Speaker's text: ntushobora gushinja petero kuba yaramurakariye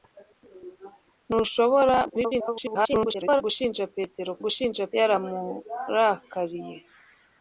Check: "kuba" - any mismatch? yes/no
yes